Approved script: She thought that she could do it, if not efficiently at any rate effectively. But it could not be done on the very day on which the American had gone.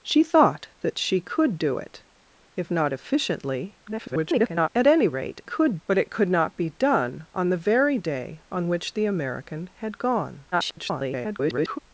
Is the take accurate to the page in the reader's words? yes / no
no